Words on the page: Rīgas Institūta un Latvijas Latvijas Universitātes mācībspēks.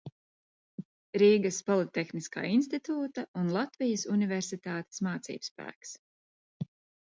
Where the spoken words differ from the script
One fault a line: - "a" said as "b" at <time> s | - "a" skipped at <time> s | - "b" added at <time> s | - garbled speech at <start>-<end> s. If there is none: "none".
- "Politehniskā" added at 1.7 s
- "Latvijas" skipped at 4.1 s